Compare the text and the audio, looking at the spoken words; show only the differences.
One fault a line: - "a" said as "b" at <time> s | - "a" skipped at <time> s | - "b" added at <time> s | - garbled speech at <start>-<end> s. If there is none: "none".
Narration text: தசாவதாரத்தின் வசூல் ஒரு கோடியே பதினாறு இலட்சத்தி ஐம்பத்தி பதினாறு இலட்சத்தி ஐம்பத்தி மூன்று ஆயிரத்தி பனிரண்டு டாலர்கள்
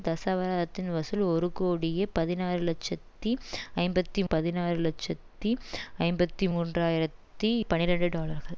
none